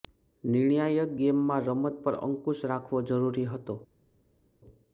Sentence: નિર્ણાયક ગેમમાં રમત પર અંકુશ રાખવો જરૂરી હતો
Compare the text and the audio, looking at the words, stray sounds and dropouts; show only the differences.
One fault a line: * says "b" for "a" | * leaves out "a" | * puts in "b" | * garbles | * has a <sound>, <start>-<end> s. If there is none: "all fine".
all fine